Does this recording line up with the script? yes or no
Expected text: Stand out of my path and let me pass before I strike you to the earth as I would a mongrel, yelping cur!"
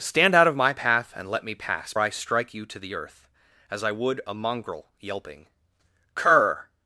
no